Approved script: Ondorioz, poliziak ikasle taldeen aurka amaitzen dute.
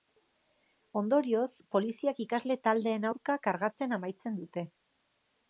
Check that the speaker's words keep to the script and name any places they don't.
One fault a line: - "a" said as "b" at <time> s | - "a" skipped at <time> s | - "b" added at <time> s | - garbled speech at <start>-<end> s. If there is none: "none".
- "kargatzen" added at 3.5 s